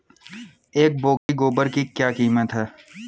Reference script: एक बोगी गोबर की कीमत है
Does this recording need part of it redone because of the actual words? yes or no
yes